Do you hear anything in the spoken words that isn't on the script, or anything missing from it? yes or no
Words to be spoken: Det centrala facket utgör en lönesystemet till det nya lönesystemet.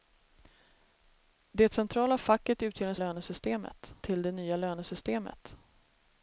no